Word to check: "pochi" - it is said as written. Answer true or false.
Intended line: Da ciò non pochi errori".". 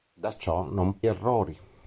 false